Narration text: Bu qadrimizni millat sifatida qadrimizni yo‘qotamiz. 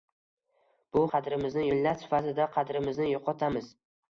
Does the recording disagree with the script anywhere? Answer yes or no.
no